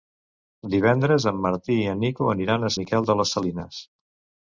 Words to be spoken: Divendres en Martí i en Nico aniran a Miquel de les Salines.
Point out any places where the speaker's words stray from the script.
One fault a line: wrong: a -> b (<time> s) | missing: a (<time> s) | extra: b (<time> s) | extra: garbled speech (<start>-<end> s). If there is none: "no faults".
no faults